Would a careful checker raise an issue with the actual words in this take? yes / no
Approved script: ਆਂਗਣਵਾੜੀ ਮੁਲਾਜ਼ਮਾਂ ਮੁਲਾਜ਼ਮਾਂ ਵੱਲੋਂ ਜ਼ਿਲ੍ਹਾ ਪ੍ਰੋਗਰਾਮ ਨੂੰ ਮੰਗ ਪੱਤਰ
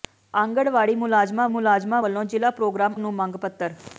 no